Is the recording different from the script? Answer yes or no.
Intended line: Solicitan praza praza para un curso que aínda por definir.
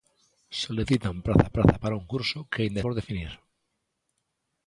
no